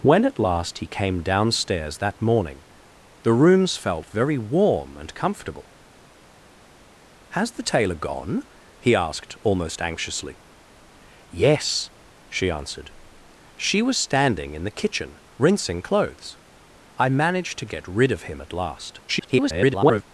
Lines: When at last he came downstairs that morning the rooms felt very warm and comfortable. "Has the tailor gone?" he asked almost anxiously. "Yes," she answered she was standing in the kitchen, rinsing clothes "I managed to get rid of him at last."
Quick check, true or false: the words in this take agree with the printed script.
false